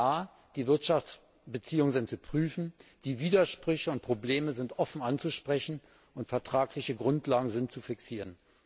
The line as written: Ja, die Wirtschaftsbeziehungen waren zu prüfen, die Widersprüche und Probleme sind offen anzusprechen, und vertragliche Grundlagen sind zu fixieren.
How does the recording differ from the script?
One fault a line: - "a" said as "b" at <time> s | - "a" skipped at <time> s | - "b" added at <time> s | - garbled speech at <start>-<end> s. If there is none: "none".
- "waren" said as "sind" at 1.9 s